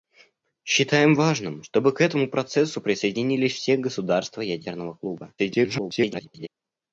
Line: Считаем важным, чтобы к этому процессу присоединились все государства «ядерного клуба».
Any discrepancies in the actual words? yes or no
yes